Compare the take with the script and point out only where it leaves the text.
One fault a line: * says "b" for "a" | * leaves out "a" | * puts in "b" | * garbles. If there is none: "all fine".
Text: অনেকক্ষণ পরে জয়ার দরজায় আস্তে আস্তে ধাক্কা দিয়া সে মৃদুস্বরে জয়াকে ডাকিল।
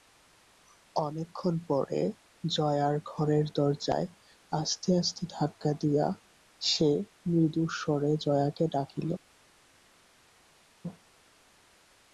* puts in "ঘরের"